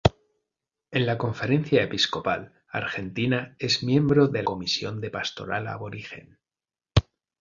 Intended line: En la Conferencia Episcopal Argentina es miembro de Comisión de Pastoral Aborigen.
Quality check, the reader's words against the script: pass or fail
pass